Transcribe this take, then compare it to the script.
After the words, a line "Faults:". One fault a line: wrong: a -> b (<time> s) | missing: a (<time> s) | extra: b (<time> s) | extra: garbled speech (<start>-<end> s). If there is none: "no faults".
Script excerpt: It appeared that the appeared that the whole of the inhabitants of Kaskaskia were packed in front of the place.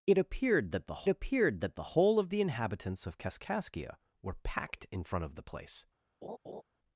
It appeared that the appeared that the whole of the inhabitants of Kaskaskia were packed in front of the place.
Faults:
no faults